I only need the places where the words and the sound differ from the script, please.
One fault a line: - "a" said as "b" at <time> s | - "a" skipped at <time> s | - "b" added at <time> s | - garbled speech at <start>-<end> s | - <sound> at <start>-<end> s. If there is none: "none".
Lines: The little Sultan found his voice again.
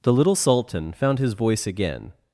none